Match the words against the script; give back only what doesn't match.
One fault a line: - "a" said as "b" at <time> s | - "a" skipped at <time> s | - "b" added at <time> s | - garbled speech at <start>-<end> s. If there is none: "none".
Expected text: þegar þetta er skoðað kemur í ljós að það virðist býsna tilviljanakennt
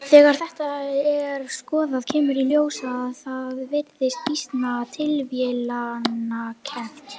none